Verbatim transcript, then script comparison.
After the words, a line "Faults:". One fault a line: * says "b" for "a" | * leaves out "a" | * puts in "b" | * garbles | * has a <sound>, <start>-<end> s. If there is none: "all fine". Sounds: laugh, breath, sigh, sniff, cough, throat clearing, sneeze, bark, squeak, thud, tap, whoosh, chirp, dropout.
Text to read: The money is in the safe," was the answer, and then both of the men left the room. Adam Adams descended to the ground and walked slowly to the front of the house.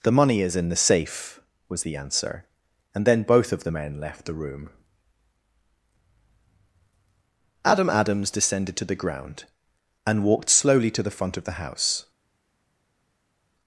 The money is in the safe," was the answer, and then both of the men left the room. Adam Adams descended to the ground and walked slowly to the front of the house.
Faults:
all fine